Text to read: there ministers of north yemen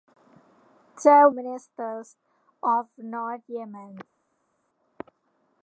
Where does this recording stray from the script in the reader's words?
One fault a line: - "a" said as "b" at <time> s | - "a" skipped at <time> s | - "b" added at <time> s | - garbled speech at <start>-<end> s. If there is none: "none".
none